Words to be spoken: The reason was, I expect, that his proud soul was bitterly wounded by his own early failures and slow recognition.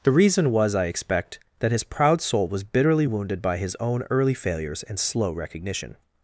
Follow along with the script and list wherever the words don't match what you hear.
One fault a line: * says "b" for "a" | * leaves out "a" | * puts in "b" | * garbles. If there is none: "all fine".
all fine